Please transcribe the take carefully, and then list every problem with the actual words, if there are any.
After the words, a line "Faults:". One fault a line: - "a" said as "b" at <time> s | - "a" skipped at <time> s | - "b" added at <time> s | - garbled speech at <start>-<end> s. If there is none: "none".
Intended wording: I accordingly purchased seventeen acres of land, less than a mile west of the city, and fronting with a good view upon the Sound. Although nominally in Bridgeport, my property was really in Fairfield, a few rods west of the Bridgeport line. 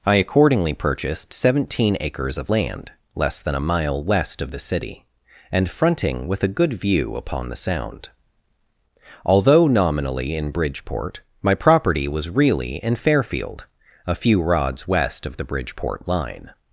I accordingly purchased seventeen acres of land, less than a mile west of the city, and fronting with a good view upon the Sound. Although nominally in Bridgeport, my property was really in Fairfield, a few rods west of the Bridgeport line.
Faults:
none